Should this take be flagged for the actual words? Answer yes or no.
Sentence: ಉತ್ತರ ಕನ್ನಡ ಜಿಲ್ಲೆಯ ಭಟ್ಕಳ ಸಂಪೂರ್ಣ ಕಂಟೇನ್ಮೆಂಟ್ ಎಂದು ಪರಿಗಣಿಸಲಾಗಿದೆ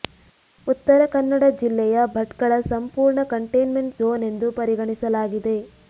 yes